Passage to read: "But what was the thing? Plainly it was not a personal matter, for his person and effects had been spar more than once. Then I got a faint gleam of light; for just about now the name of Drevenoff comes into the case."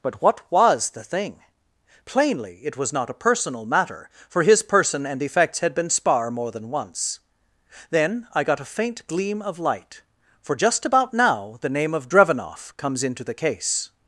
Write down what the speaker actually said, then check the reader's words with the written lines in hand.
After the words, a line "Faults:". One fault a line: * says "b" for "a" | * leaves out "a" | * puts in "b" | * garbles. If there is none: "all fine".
"But what was the thing? Plainly it was not a personal matter, for his person and effects had been spar more than once. Then I got a faint gleam of light; for just about now the name of Drevenoff comes into the case."
Faults:
all fine